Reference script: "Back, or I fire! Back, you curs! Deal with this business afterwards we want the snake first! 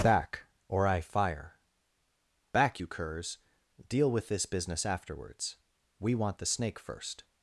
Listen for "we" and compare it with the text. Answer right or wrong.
right